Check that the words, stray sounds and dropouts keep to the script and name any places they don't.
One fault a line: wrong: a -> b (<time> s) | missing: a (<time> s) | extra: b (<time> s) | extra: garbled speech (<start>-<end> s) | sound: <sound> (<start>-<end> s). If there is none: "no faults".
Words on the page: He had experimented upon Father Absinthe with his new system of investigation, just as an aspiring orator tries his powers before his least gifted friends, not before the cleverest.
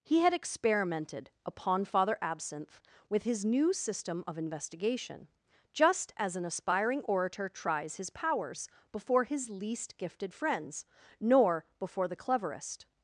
wrong: not -> nor (11.2 s)